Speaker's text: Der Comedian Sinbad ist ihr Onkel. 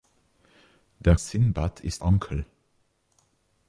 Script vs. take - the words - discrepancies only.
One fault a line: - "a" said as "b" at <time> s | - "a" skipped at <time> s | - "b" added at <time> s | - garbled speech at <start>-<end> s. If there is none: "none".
- "Comedian" skipped at 1.1 s
- "ihr" skipped at 2.0 s